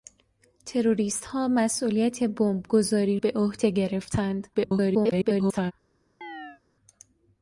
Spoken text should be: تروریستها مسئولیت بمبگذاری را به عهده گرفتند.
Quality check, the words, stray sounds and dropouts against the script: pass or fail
fail